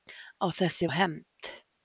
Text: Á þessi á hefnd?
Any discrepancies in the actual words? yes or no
no